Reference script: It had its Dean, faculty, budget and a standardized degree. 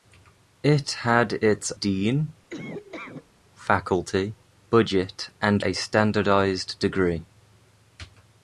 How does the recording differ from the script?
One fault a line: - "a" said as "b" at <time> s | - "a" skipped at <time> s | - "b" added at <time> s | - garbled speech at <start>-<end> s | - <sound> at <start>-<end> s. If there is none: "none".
- laugh at 2.5-3.3 s